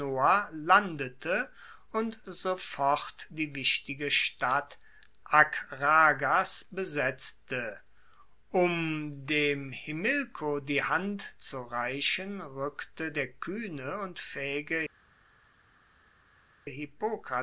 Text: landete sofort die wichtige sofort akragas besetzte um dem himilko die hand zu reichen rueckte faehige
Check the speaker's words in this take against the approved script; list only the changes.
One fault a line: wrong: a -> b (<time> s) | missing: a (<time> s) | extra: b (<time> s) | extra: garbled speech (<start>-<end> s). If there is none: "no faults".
extra: und (1.9 s)
wrong: sofort -> stadt (4.1 s)
extra: der kuehne und (13.1 s)